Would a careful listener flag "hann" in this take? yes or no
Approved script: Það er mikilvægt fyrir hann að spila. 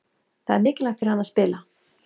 no